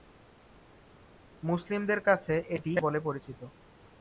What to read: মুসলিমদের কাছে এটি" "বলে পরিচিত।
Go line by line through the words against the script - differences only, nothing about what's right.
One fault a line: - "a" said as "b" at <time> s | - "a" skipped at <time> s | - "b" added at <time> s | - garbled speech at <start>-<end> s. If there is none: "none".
none